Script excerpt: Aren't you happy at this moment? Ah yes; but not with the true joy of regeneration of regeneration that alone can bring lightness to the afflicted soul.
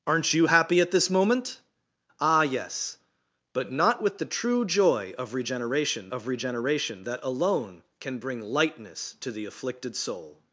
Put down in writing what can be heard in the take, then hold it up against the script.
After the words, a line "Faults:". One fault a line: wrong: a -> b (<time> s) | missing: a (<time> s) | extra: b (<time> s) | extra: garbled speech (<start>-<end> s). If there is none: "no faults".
Aren't you happy at this moment? Ah yes; but not with the true joy of regeneration of regeneration that alone can bring lightness to the afflicted soul.
Faults:
no faults